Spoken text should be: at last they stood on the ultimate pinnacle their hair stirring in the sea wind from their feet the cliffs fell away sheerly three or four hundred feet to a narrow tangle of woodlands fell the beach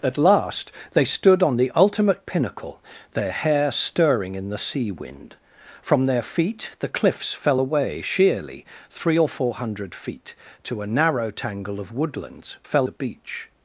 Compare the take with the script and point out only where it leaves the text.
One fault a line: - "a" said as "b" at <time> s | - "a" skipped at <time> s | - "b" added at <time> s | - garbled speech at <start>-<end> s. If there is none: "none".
none